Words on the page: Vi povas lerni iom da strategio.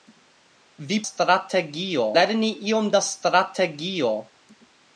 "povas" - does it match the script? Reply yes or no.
no